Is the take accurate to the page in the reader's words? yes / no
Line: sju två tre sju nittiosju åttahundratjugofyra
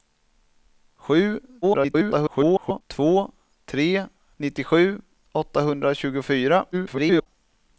no